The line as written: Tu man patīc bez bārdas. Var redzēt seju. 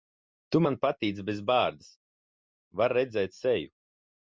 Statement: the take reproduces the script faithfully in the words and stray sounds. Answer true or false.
true